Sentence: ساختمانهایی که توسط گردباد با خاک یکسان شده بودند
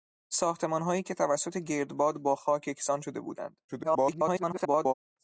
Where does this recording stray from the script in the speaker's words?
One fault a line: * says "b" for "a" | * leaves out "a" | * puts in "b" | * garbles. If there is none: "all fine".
* garbles